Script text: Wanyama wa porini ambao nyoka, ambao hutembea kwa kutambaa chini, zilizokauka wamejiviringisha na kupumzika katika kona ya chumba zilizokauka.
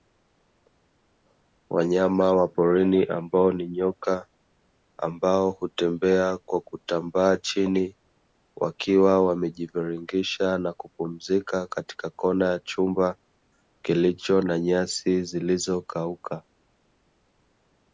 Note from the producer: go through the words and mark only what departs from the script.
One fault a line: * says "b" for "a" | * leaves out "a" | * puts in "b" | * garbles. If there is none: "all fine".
* puts in "ni"
* says "wakiwa" for "zilizokauka"
* puts in "kilicho na nyasi"